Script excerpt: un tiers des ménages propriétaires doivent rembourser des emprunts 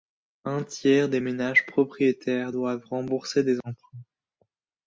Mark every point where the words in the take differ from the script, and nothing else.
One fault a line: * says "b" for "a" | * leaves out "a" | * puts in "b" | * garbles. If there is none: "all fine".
all fine